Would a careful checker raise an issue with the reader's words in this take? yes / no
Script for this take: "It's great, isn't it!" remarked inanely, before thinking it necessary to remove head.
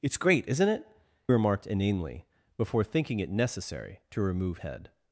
no